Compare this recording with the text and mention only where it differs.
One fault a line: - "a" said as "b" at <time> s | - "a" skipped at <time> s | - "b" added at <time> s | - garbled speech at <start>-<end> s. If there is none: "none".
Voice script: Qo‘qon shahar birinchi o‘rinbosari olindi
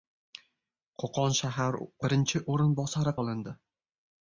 none